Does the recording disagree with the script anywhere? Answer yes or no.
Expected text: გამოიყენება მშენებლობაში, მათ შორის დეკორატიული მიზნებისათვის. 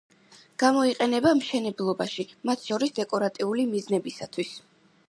no